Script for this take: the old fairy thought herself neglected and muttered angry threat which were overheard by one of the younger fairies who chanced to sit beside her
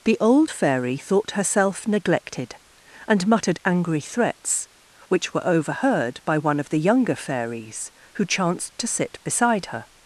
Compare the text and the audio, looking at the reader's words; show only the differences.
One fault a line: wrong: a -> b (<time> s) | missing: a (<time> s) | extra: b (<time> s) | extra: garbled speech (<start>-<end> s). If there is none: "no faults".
wrong: threat -> threats (4.0 s)